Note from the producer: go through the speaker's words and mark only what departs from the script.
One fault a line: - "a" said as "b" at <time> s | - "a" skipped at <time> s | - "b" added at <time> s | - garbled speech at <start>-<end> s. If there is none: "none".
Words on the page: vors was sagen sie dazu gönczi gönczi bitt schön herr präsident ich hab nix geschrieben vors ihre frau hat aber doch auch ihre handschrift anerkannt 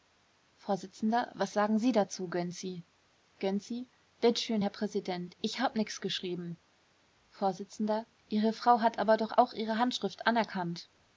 none